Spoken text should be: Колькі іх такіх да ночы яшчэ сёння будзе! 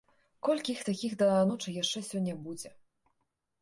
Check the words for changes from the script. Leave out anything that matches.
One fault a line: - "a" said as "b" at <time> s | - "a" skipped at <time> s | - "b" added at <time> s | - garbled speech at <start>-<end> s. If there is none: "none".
none